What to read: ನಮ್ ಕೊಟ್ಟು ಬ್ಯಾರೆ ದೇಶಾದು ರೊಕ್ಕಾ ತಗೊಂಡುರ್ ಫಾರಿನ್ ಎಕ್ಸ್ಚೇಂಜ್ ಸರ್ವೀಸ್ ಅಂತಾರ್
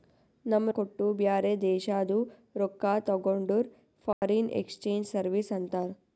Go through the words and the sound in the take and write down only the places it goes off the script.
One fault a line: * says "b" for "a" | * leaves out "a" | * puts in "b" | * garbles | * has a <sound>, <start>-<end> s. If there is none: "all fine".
* has a dropout, 4.1-4.2 s